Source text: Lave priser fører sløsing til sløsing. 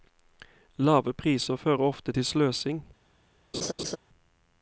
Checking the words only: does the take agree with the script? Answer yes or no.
no